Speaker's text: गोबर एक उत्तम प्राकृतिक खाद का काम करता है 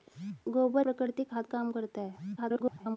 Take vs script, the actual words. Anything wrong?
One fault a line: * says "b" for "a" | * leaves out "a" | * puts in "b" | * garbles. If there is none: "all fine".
* leaves out "एक उत्तम"
* leaves out "का"
* garbles